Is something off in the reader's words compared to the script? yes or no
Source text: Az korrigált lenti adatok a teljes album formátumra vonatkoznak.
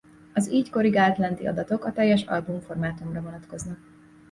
yes